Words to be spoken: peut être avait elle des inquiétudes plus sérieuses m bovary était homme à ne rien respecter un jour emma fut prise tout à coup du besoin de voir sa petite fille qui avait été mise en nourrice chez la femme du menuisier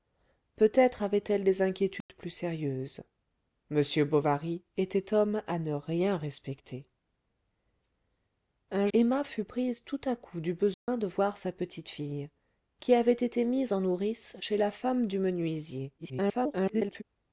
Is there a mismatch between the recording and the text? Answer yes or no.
yes